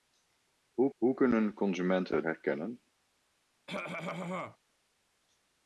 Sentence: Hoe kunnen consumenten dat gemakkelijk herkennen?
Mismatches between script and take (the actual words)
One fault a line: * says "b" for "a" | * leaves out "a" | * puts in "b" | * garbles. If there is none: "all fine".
* puts in "hoe"
* leaves out "dat gemakkelijk"